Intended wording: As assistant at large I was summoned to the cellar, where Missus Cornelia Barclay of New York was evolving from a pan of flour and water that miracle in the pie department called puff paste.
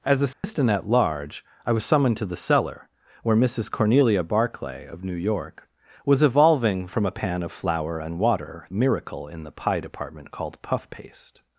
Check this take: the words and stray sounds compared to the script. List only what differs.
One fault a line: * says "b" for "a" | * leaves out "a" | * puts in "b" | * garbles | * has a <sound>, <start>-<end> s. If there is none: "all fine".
* has a dropout, 0.3-0.4 s
* leaves out "that"